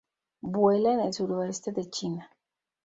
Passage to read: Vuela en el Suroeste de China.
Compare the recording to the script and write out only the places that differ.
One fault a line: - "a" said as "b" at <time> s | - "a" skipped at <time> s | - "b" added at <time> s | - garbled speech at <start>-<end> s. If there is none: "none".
none